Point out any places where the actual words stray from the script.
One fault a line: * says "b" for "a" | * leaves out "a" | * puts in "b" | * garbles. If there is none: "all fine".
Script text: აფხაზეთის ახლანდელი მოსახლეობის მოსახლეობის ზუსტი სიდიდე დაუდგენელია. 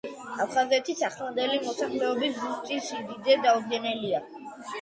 * leaves out "მოსახლეობის"